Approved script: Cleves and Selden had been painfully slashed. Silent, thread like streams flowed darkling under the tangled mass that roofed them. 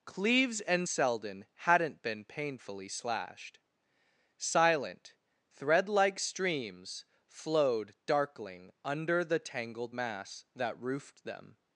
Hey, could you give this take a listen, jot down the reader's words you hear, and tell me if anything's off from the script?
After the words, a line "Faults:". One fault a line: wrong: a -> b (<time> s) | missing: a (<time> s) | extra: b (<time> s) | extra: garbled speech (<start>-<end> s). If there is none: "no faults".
Cleves and Selden hadn't been painfully slashed. Silent, thread like streams flowed darkling under the tangled mass that roofed them.
Faults:
wrong: had -> hadn't (1.5 s)